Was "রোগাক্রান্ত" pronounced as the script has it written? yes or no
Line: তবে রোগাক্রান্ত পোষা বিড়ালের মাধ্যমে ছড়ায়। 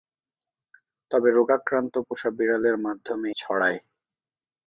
yes